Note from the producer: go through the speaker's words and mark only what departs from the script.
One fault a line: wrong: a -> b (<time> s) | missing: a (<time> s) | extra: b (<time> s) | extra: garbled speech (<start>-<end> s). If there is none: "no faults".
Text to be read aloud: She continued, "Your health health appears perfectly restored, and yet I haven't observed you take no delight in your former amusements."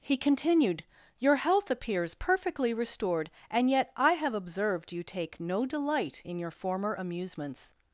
wrong: She -> He (0.0 s)
missing: health (1.7 s)
wrong: haven't -> have (4.1 s)